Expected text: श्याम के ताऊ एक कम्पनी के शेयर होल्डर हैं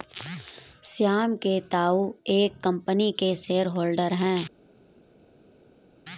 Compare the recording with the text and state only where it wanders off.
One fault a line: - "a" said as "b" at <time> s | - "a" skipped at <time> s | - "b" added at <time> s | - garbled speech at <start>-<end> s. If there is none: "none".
none